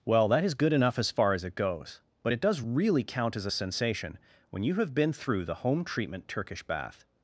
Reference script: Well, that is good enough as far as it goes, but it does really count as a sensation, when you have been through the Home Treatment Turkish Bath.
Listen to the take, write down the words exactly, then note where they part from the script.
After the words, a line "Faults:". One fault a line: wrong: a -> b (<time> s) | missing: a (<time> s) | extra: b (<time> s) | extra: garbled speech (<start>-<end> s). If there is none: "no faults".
Well, that is good enough as far as it goes, but it does really count as a sensation, when you have been through the Home Treatment Turkish Bath.
Faults:
no faults